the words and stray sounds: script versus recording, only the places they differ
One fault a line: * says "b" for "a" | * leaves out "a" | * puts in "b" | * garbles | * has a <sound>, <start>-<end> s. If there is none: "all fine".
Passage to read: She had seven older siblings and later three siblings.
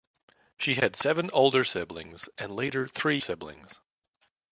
all fine